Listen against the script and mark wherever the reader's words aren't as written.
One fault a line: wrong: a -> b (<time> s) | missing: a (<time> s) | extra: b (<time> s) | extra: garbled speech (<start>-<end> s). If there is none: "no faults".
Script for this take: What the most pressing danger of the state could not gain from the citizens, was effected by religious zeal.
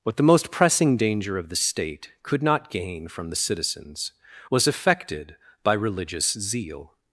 no faults